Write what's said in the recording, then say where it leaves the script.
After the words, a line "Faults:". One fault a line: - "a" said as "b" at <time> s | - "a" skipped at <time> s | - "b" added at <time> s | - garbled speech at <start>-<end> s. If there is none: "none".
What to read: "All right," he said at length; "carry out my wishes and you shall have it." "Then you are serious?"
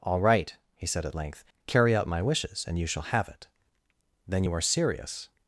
"All right," he said at length; "carry out my wishes and you shall have it." "Then you are serious?"
Faults:
none